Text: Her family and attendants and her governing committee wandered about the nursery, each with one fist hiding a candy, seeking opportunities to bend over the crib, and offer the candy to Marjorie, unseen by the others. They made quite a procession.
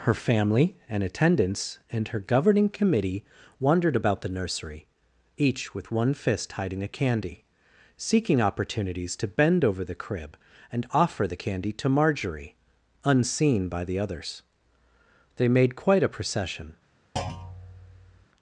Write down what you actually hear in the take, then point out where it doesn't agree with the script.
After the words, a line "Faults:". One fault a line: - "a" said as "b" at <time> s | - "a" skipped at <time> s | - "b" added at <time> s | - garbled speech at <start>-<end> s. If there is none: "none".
Her family and attendants and her governing committee wandered about the nursery, each with one fist hiding a candy, seeking opportunities to bend over the crib, and offer the candy to Marjorie, unseen by the others. They made quite a procession.
Faults:
none